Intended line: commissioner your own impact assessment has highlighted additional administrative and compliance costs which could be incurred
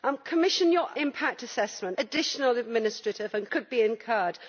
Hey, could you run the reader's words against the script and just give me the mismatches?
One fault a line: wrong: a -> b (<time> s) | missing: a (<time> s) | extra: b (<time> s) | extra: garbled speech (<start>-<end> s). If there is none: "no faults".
missing: own (0.9 s)
missing: has highlighted (2.0 s)
missing: compliance costs which (3.5 s)